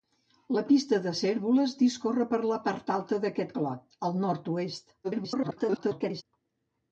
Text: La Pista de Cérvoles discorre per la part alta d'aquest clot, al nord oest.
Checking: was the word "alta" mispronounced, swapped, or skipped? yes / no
no